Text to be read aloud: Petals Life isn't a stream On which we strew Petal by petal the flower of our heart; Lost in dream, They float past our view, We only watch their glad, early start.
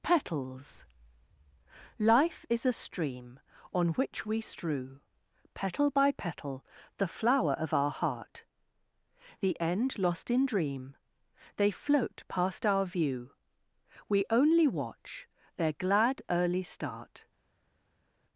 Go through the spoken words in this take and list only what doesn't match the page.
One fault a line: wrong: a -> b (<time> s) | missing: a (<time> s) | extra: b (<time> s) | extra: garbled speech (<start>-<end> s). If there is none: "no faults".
wrong: isn't -> is (2.5 s)
extra: The end (9.4 s)